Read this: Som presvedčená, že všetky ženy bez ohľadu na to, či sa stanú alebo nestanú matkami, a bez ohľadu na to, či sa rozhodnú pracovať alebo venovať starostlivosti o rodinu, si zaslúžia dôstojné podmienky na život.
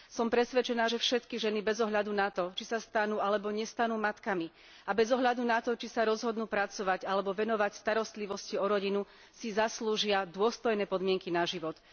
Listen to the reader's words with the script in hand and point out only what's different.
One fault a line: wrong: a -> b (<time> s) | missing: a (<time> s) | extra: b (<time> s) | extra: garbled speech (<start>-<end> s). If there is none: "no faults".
no faults